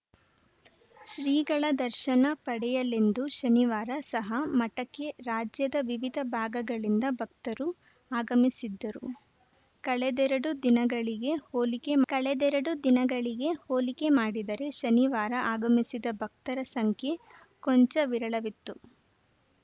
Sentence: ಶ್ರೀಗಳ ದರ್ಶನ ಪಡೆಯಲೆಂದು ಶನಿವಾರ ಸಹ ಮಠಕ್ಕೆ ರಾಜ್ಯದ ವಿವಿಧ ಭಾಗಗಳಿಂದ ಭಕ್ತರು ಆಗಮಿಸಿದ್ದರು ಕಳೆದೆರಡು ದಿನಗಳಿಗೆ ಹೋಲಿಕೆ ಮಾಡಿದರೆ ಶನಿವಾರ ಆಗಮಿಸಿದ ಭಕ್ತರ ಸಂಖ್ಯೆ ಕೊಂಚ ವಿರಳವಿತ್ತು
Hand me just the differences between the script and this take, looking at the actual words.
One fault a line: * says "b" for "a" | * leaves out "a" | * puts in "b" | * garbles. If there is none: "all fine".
* puts in "ಕಳೆದೆರಡು ದಿನಗಳಿಗೆ ಹೋಲಿಕೆ"